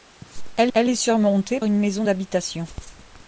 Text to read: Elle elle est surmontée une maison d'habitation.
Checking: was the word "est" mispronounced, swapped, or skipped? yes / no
no